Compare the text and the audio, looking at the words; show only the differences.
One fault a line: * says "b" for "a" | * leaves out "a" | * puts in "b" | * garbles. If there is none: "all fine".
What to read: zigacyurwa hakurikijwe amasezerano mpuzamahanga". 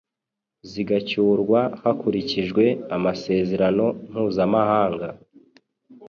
all fine